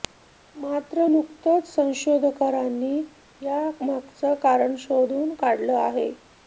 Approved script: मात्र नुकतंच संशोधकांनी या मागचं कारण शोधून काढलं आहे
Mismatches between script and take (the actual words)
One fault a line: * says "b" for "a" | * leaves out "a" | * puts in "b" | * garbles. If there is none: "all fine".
all fine